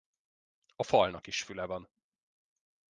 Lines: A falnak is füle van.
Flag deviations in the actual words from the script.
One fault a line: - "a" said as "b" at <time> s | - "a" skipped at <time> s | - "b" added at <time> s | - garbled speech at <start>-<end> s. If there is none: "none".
none